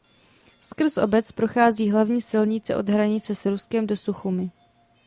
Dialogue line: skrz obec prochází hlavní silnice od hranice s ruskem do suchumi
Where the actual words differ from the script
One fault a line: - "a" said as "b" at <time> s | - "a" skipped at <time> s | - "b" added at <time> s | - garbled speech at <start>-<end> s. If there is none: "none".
none